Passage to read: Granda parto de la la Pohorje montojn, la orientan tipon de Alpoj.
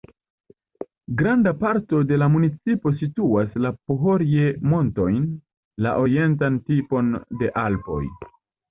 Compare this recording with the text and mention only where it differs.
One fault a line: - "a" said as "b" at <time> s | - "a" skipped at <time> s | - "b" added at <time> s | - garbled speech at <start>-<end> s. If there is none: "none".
- "municipo situas" added at 2.4 s